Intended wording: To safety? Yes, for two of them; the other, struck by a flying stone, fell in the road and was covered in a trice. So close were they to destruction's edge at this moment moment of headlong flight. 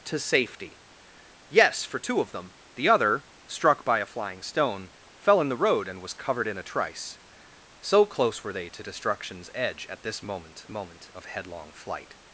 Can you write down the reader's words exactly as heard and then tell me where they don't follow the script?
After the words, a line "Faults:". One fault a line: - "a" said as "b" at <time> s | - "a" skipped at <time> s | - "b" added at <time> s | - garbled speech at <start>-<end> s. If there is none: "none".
To safety? Yes, for two of them; the other, struck by a flying stone, fell in the road and was covered in a trice. So close were they to destruction's edge at this moment moment of headlong flight.
Faults:
none